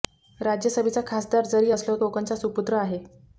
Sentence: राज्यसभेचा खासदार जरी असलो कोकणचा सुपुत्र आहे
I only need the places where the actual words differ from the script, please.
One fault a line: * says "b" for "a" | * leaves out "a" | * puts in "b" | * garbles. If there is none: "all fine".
all fine